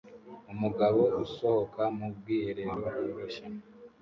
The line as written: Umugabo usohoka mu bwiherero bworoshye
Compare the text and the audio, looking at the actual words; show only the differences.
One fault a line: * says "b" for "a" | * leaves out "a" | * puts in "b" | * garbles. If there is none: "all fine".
all fine